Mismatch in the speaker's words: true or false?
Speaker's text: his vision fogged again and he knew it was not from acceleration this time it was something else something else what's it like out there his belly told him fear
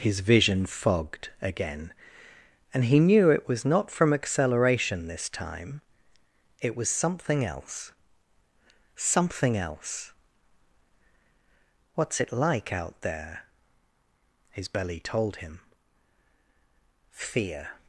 false